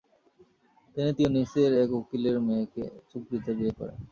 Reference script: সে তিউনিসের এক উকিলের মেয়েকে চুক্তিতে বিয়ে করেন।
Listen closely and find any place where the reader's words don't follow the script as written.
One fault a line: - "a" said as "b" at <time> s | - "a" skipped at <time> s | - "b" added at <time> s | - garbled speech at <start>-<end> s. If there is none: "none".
- "সে" said as "তিনি" at 0.9 s